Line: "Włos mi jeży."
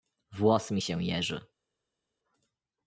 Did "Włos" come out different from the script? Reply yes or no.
no